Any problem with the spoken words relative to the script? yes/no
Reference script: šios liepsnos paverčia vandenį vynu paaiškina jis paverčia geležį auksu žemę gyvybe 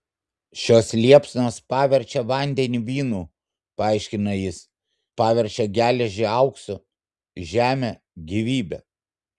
no